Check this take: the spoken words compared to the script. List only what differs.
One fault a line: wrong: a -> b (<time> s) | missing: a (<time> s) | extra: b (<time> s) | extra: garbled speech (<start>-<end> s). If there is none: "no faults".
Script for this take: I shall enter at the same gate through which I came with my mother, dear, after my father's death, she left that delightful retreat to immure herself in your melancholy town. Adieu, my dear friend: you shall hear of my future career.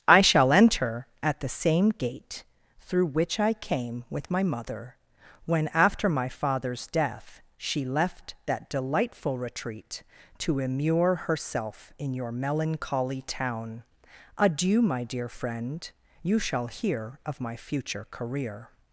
wrong: dear -> when (5.5 s)